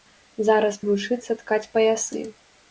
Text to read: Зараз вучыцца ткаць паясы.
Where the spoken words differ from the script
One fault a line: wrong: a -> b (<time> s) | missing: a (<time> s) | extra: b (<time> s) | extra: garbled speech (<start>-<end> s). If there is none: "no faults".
no faults